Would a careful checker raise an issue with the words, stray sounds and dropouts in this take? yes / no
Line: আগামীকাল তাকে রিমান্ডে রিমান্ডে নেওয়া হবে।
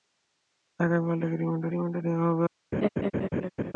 yes